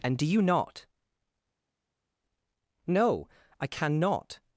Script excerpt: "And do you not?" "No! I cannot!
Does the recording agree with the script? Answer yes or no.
yes